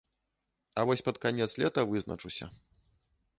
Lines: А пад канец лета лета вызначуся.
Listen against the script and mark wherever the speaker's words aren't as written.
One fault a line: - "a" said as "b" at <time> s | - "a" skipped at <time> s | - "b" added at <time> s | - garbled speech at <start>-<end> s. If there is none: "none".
- "вось" added at 0.8 s
- "лета" skipped at 1.8 s